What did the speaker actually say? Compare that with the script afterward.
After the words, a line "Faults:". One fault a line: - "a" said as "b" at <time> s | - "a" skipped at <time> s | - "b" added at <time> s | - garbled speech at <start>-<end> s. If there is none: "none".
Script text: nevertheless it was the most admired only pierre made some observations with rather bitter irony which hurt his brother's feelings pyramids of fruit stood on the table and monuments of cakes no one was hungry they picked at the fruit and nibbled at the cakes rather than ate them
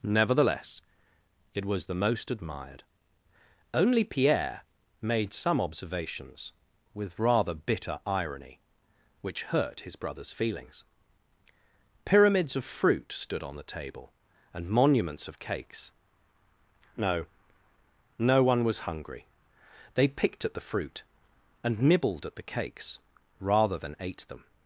nevertheless it was the most admired only pierre made some observations with rather bitter irony which hurt his brother's feelings pyramids of fruit stood on the table and monuments of cakes no no one was hungry they picked at the fruit and nibbled at the cakes rather than ate them
Faults:
- "no" added at 18.2 s